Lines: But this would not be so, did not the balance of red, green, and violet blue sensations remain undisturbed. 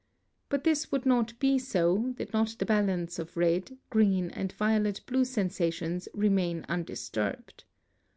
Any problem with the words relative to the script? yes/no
no